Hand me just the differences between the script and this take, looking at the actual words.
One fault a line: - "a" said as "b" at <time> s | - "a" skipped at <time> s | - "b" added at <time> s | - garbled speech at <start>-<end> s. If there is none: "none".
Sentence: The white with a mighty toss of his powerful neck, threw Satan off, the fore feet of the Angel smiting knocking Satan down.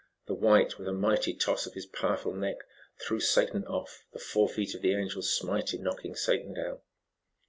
none